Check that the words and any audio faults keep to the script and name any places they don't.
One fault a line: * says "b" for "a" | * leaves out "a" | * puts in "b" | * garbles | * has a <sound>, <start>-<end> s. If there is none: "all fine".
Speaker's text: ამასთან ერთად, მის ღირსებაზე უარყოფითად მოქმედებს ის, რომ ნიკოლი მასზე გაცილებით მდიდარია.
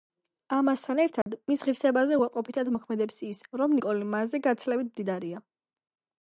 * has a dropout, 1.2-1.3 s